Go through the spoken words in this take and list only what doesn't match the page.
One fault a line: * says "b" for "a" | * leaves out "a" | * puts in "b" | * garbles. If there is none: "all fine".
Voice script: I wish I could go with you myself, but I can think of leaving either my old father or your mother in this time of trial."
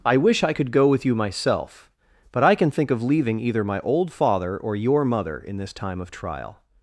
all fine